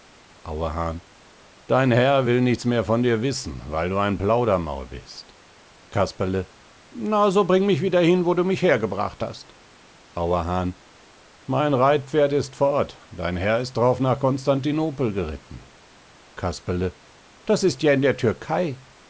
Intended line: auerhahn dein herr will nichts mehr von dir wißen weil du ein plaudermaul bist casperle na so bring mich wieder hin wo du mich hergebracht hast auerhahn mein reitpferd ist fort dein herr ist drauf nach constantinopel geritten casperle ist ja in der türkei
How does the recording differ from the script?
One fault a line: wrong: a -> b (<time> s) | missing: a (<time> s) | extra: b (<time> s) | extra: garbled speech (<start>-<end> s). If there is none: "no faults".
extra: das (17.4 s)